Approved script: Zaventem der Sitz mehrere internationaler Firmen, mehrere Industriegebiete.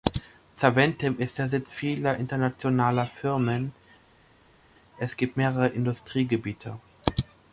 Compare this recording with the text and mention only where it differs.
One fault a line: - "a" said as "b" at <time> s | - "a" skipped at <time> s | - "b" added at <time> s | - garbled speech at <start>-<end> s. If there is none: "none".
- "ist" added at 1.2 s
- "mehrere" said as "vieler" at 1.7 s
- "es gibt" added at 5.0 s